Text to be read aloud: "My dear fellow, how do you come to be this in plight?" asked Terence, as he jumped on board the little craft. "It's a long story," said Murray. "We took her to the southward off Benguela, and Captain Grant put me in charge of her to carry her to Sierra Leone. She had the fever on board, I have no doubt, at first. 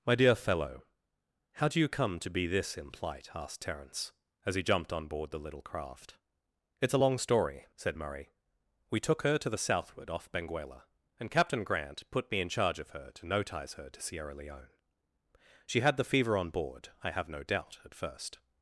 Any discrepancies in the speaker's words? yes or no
yes